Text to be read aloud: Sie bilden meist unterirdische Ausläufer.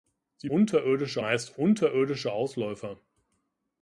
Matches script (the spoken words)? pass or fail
fail